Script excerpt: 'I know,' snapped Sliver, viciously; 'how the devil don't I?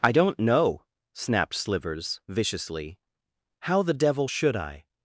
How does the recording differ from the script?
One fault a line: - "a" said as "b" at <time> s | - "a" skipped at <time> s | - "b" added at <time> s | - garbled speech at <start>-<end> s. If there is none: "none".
- "don't" added at 0.1 s
- "Sliver" said as "Slivers" at 1.5 s
- "don't" said as "should" at 4.3 s